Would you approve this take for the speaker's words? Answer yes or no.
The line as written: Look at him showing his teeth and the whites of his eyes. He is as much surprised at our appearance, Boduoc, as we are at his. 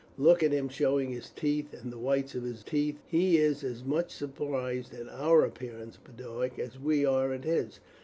no